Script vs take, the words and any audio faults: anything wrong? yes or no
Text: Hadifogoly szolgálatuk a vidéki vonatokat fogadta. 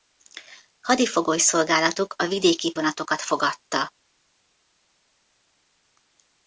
no